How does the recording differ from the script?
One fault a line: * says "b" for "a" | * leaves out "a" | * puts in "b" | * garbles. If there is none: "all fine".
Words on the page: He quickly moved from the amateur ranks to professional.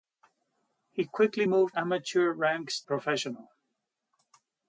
* leaves out "from the"
* leaves out "to"